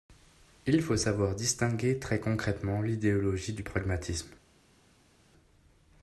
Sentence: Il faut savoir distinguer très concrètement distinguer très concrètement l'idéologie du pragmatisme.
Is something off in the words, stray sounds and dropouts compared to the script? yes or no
yes